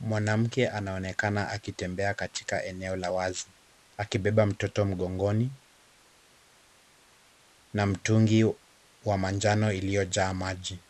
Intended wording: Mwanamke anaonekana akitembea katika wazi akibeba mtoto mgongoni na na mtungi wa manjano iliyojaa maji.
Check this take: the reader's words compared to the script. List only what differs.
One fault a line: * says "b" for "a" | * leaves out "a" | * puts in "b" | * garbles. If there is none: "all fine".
* puts in "eneo la"
* leaves out "na"